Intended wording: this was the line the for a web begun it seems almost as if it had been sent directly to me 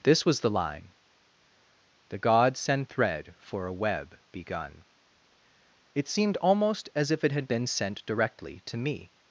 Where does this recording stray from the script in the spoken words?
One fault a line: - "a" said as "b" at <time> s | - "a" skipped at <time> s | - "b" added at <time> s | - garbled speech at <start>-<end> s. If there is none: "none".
- "gods send thread" added at 2.2 s
- "seems" said as "seemed" at 6.1 s